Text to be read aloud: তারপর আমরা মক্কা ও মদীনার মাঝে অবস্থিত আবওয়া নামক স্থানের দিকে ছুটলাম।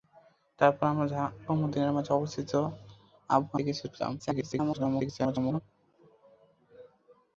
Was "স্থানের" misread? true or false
true